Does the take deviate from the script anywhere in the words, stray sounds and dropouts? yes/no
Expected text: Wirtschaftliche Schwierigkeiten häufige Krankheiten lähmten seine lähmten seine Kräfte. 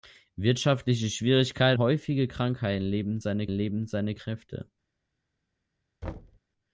yes